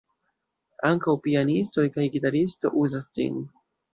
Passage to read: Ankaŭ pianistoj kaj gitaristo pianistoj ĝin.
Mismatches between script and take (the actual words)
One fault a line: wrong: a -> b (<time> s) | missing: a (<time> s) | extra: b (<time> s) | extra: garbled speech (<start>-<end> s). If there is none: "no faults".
wrong: pianistoj -> uzas (2.9 s)